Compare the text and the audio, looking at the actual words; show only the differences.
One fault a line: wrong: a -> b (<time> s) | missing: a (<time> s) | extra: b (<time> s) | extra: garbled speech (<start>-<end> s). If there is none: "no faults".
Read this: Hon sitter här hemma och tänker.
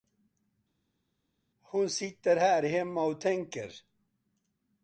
no faults